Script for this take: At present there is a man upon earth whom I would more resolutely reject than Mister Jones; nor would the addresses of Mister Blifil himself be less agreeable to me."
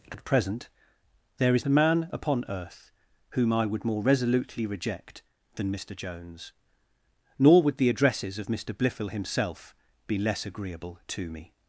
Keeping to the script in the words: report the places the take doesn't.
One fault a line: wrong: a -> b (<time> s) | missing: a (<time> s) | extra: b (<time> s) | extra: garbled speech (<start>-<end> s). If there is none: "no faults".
no faults